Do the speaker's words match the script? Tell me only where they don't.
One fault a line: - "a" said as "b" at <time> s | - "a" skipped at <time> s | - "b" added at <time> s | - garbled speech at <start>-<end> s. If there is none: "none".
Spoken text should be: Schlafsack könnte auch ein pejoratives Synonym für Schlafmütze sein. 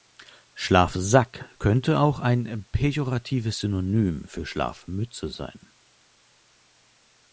none